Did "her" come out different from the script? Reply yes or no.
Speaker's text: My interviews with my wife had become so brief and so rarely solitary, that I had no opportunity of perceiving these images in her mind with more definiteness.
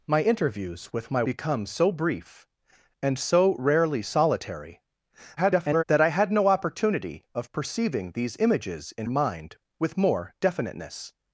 yes